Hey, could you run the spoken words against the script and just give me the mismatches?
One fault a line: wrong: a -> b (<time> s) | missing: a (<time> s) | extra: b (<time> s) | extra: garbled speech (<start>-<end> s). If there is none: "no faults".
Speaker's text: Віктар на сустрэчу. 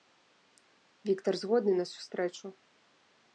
extra: згодны (1.4 s)